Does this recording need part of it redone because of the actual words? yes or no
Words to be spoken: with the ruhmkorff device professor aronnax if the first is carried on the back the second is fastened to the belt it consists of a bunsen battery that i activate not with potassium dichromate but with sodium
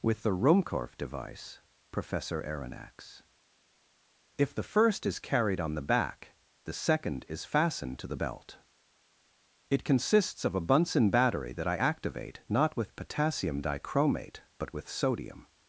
no